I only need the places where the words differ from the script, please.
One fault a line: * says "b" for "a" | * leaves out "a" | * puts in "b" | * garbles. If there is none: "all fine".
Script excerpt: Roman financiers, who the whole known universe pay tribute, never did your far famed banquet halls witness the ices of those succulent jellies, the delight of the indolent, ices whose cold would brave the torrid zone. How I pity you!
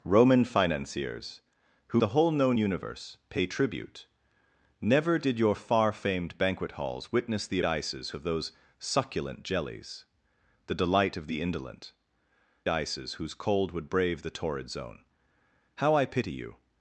all fine